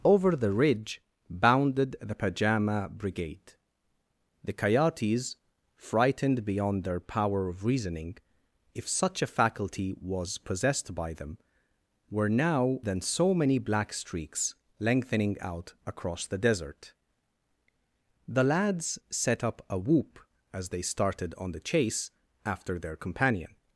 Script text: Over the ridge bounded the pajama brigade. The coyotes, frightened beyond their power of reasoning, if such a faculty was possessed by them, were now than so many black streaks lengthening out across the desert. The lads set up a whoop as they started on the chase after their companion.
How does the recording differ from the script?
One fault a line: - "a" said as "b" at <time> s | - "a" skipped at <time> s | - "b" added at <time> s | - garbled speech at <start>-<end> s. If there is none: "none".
none